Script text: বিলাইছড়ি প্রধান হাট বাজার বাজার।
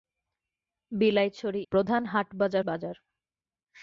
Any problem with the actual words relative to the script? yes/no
no